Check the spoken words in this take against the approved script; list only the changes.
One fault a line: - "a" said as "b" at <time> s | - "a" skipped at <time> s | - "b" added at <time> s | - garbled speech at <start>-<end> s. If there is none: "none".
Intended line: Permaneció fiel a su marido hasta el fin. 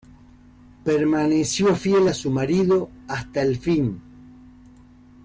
none